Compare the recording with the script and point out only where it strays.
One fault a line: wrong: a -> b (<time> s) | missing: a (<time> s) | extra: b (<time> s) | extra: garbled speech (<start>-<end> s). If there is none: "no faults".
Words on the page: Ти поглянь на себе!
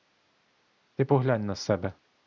no faults